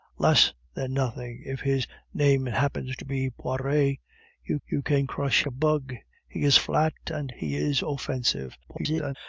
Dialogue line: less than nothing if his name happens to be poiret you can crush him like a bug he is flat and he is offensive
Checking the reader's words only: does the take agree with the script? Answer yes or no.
no